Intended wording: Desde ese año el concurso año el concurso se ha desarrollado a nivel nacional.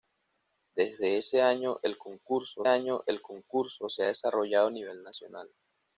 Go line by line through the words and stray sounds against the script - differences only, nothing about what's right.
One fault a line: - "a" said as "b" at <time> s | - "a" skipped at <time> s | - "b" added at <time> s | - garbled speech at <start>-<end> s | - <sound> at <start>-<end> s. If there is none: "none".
none